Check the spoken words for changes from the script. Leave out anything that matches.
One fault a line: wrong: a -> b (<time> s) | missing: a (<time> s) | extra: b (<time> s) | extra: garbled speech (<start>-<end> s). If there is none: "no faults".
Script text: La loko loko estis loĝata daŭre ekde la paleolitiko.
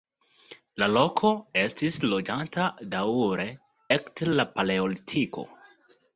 missing: loko (1.3 s)